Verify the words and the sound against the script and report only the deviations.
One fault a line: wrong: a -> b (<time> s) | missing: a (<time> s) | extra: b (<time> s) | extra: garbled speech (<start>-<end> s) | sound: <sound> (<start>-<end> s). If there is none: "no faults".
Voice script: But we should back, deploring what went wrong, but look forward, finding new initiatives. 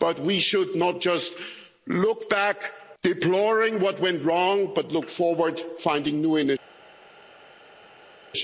extra: not just look (0.8 s)